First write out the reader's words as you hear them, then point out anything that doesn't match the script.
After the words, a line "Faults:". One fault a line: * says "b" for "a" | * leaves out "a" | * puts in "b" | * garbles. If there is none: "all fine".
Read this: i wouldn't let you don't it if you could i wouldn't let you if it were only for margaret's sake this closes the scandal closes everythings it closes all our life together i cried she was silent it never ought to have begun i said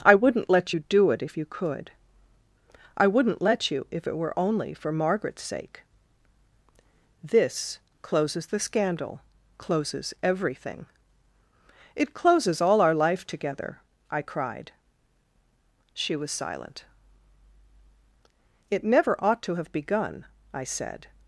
i wouldn't let you do it if you could i wouldn't let you if it were only for margaret's sake this closes the scandal closes everything it closes all our life together i cried she was silent it never ought to have begun i said
Faults:
* says "do" for "don't"
* says "everything" for "everythings"